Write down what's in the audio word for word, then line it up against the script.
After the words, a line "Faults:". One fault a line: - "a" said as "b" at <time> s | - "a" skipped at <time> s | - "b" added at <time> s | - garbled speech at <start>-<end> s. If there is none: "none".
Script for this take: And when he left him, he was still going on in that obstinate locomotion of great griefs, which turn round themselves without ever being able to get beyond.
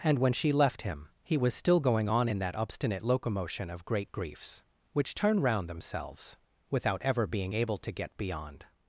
And when she left him, he was still going on in that obstinate locomotion of great griefs, which turn round themselves without ever being able to get beyond.
Faults:
- "he" said as "she" at 0.3 s